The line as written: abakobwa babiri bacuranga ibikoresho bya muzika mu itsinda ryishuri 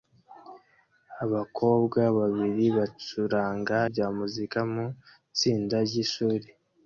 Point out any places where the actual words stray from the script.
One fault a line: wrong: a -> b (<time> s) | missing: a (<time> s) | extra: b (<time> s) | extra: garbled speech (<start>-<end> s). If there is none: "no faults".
missing: ibikoresho (3.8 s)